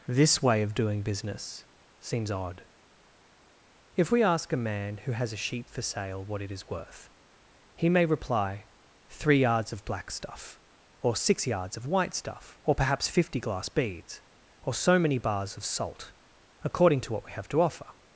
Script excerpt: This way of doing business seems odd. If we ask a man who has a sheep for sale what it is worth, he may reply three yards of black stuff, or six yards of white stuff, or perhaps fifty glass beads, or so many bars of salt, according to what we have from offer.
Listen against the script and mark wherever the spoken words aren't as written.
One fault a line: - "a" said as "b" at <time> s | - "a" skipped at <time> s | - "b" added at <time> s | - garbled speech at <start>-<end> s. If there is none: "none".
- "from" said as "to" at 17.5 s